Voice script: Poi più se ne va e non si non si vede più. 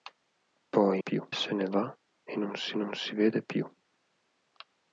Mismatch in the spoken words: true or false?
false